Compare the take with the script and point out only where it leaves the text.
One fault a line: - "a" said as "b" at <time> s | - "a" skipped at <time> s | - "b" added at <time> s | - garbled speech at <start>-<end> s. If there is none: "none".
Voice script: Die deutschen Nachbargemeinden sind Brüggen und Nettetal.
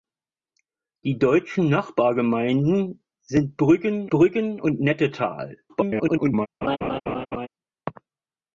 - "Brüggen" added at 4.1 s
- garbled speech at 5.7-6.5 s